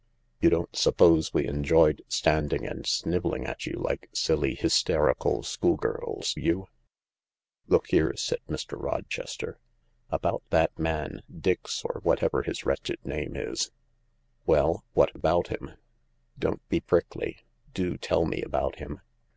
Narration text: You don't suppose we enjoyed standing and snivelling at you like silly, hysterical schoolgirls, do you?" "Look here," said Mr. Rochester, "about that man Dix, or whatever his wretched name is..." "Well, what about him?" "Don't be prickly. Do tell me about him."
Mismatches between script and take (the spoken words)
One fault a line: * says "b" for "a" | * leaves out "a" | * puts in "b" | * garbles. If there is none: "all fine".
* leaves out "do"